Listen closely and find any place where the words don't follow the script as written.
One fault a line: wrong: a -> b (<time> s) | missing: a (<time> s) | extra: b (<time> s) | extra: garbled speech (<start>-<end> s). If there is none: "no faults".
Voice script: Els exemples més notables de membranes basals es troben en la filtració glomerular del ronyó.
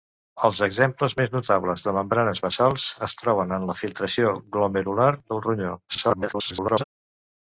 extra: garbled speech (5.9-6.8 s)